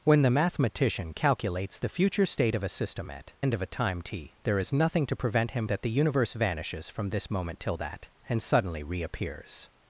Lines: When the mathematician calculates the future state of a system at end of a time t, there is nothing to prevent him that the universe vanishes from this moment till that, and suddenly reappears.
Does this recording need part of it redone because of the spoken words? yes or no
no